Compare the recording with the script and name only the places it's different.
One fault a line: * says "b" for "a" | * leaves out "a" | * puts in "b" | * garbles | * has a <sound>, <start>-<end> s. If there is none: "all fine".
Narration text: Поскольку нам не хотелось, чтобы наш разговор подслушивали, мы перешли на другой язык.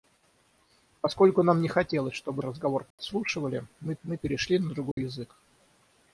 * leaves out "наш"
* has a dropout, 2.9-3.0 s
* puts in "мы"
* has a dropout, 4.9-5.0 s